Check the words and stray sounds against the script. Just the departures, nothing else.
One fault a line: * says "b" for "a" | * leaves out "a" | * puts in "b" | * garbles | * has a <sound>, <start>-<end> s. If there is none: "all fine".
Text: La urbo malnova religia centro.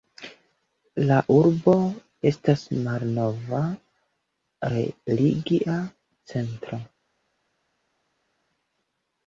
* puts in "estas"